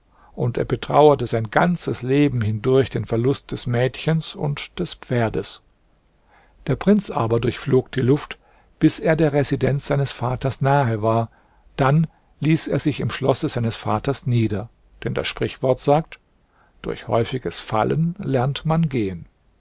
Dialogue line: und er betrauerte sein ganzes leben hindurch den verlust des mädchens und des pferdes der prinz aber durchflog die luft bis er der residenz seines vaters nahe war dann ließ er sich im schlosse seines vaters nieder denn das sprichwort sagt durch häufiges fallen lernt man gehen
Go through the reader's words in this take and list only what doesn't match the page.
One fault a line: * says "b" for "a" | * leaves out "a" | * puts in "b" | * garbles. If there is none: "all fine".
all fine